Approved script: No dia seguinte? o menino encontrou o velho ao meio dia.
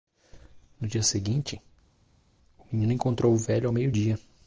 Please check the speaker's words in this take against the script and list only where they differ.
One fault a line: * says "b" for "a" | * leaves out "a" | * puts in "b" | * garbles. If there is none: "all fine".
all fine